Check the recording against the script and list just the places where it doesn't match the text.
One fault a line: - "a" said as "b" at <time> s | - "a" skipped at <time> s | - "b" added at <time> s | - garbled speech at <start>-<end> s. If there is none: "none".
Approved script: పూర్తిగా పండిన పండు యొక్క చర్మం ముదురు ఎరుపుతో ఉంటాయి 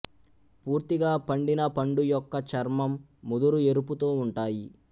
none